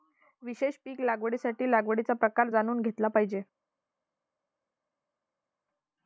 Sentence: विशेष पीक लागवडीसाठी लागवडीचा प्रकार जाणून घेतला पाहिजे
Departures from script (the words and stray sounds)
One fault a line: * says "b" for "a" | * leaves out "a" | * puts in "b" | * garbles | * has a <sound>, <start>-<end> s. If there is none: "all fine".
all fine